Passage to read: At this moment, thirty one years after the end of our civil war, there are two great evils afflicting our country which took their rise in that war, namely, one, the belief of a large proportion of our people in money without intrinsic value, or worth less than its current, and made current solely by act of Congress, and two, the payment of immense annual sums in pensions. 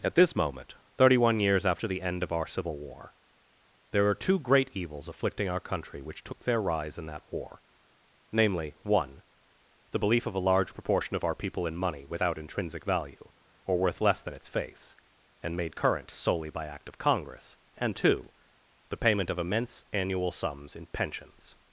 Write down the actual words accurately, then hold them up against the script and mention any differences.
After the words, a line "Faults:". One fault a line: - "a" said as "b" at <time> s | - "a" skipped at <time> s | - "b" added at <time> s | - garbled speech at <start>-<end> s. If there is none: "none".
At this moment, thirty one years after the end of our civil war, there are two great evils afflicting our country which took their rise in that war, namely, one, the belief of a large proportion of our people in money without intrinsic value, or worth less than its face, and made current solely by act of Congress, and two, the payment of immense annual sums in pensions.
Faults:
- "current" said as "face" at 14.5 s